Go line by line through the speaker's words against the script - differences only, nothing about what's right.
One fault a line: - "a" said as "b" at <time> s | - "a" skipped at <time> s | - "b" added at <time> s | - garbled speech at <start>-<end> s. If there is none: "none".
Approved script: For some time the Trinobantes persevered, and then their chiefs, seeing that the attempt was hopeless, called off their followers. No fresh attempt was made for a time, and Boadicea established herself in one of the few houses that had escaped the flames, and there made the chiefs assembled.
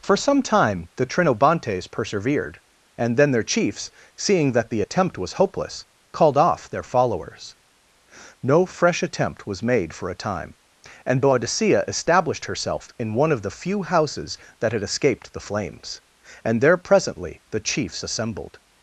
- "made" said as "presently" at 16.8 s